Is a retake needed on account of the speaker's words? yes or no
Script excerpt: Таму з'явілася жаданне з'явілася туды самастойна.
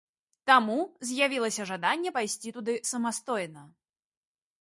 yes